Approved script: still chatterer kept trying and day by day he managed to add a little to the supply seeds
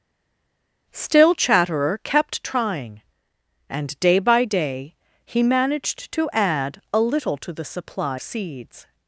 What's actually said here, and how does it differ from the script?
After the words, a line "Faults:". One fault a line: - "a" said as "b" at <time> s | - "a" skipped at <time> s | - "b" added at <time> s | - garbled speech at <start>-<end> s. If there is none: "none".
still chatterer kept trying and day by day he managed to add a little to the supply seeds
Faults:
none